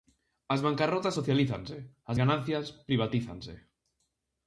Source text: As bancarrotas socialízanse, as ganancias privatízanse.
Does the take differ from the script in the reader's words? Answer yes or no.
no